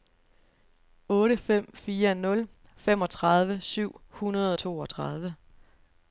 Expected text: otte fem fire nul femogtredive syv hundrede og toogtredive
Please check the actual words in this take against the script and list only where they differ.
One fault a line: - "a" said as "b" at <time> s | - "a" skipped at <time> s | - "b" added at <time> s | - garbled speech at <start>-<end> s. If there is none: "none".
none